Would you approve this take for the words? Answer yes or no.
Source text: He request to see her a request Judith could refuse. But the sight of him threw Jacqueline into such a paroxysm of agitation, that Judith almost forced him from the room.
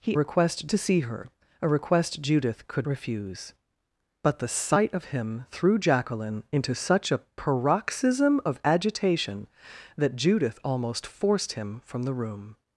yes